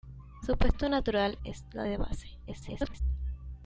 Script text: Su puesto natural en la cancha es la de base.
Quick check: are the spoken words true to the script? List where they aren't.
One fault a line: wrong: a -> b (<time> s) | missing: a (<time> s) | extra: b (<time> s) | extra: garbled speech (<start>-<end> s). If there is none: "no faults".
missing: en la cancha (1.4 s)
extra: garbled speech (2.5-3.0 s)